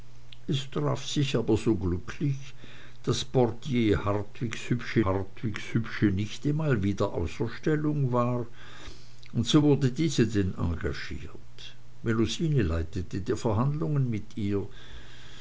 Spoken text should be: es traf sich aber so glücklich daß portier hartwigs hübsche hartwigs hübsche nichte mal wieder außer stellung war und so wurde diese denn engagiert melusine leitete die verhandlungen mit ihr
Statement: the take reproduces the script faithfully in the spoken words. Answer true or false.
true